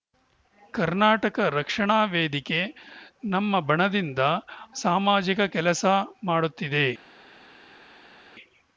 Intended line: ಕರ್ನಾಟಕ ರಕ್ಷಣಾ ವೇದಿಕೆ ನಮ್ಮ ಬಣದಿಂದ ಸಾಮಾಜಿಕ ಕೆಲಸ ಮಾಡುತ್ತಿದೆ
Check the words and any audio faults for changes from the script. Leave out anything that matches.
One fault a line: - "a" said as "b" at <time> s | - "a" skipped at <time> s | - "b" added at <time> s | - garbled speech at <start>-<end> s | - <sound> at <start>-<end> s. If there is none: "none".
none